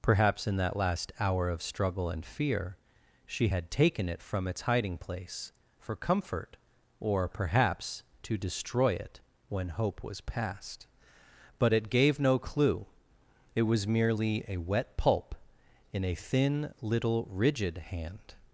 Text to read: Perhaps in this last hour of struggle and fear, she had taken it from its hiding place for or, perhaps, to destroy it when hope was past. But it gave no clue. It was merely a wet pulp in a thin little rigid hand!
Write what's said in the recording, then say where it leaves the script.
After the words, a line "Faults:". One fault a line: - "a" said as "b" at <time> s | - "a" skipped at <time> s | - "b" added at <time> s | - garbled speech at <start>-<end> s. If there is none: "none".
Perhaps in that last hour of struggle and fear, she had taken it from its hiding place for comfort or, perhaps, to destroy it when hope was past. But it gave no clue. It was merely a wet pulp in a thin little rigid hand!
Faults:
- "this" said as "that" at 0.6 s
- "comfort" added at 6.0 s